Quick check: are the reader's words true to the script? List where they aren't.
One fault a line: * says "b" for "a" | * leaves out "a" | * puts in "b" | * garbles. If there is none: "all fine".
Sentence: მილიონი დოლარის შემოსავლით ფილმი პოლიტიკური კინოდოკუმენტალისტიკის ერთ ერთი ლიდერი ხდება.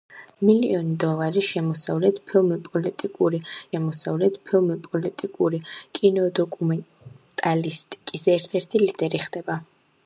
* puts in "შემოსავლით ფილმი პოლიტიკური"